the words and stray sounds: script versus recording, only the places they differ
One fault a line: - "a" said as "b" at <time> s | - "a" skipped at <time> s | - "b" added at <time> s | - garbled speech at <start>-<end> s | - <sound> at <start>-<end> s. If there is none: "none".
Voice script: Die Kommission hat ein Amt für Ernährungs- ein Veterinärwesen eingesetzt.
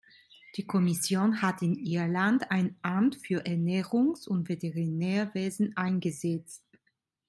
- "in Irland" added at 1.6 s
- "ein" said as "und" at 4.3 s